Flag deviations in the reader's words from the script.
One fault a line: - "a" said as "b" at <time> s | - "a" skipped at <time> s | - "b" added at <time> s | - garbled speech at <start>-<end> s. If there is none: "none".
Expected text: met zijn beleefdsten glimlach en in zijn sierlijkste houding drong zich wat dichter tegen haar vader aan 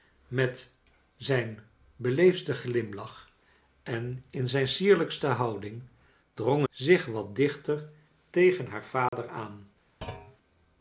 none